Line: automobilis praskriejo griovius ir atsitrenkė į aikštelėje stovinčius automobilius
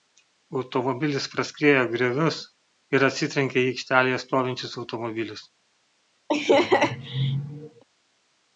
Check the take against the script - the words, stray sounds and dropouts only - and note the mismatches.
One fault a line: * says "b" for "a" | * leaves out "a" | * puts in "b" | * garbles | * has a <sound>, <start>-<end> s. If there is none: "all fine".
* has a laugh, 6.3-7.8 s